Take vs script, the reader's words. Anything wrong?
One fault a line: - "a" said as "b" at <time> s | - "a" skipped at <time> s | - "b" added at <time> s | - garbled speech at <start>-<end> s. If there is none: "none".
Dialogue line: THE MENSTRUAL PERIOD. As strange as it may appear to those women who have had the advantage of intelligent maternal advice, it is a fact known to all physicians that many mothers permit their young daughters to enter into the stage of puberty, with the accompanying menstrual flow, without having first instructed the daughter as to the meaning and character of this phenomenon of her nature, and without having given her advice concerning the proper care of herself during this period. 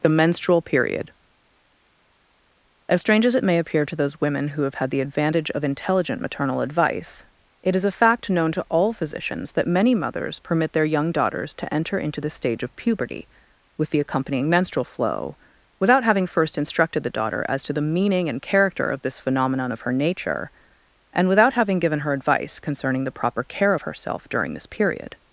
none